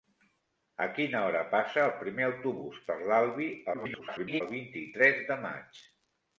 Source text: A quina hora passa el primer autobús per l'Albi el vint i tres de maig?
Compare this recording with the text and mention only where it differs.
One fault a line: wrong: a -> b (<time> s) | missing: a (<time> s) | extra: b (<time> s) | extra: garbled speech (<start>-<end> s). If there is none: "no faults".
extra: garbled speech (3.7-4.4 s)